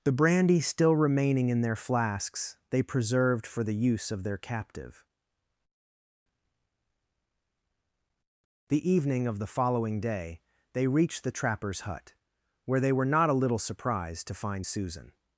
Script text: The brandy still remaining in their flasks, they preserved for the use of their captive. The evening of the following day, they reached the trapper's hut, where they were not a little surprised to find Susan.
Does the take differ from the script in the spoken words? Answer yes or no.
no